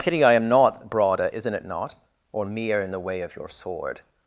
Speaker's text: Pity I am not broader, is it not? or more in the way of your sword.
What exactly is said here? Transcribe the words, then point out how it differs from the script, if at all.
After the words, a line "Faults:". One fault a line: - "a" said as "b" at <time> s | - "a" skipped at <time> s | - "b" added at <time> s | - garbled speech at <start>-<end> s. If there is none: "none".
Pity I am not broader, isn't it not? or mere in the way of your sword.
Faults:
- "is" said as "isn't" at 1.3 s
- "more" said as "mere" at 2.5 s